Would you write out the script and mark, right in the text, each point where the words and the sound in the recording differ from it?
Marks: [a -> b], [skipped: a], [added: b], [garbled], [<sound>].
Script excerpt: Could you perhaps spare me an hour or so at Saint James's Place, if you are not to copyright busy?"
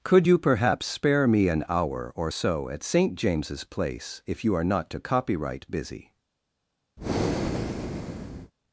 Could you perhaps spare me an hour or so at Saint James's Place, if you are not to copyright busy?" [breath]